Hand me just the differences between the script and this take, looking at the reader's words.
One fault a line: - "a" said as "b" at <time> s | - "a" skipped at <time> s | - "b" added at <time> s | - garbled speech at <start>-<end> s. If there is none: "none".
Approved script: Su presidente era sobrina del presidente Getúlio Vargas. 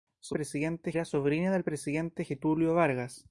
none